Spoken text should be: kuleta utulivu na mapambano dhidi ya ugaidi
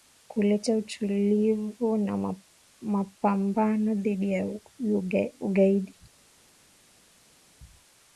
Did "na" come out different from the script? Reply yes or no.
no